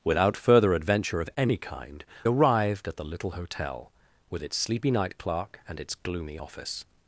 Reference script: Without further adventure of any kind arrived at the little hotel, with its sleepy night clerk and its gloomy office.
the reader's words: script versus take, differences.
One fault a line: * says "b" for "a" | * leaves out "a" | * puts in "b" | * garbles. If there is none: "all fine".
all fine